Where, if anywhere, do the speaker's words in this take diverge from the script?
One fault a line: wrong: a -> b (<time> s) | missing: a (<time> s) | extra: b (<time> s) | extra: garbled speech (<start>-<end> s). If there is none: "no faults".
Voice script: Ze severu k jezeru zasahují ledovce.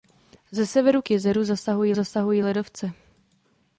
extra: zasahují (1.9 s)